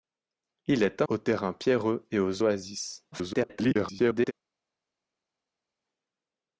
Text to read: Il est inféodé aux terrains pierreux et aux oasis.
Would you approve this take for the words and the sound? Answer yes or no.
no